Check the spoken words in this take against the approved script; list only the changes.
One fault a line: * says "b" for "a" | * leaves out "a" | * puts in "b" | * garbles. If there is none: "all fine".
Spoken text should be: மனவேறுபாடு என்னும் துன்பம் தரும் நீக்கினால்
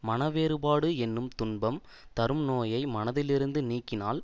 * puts in "நோயை மனத்திலிருந்து"